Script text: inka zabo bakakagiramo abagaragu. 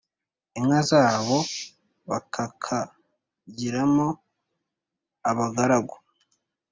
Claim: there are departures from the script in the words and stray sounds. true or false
false